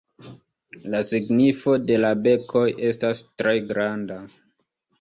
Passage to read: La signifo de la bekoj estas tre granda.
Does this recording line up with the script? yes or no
yes